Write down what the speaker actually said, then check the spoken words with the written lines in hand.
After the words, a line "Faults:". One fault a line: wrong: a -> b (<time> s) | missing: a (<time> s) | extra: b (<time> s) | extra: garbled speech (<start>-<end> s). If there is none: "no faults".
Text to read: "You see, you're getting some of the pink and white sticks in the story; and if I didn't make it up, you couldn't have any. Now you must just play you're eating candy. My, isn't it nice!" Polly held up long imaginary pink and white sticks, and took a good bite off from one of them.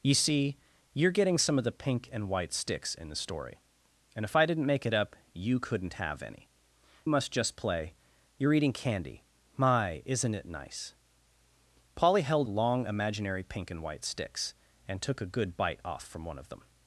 "You see, you're getting some of the pink and white sticks in the story; and if I didn't make it up, you couldn't have any. Must just play you're eating candy. My, isn't it nice!" Polly held long imaginary pink and white sticks, and took a good bite off from one of them.
Faults:
missing: Now you (6.5 s)
missing: up (12.5 s)